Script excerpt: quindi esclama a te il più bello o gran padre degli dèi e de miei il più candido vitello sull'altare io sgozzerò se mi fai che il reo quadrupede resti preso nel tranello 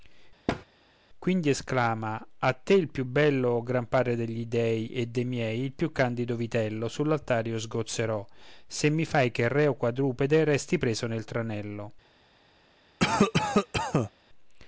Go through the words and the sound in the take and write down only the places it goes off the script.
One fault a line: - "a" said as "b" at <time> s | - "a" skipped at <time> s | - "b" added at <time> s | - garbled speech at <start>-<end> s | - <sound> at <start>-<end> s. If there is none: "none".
- thud at 0.5-0.7 s
- cough at 13.0-14.1 s